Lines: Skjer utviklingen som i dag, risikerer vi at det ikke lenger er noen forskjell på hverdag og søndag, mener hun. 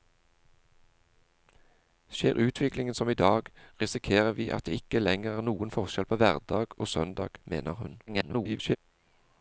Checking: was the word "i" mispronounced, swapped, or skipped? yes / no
no